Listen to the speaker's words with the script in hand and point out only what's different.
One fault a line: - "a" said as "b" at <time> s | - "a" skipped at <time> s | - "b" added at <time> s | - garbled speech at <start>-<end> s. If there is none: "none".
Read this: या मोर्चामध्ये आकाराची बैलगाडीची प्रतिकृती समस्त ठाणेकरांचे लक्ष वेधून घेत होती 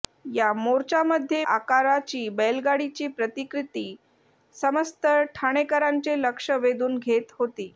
none